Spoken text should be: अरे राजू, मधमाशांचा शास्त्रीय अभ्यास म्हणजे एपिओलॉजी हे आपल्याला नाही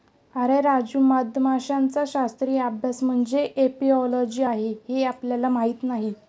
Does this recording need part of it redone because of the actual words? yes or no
yes